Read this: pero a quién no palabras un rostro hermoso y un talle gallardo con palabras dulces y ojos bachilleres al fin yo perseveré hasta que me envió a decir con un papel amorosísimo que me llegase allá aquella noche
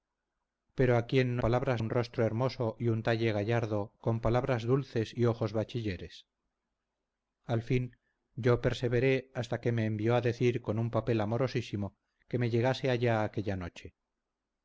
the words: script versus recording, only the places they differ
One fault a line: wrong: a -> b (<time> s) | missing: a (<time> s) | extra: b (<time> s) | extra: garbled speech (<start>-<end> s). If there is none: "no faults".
no faults